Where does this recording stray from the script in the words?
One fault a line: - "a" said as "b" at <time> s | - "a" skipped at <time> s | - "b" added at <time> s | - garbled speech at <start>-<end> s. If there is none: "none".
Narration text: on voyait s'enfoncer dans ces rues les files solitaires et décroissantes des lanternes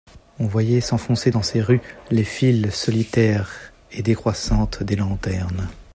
none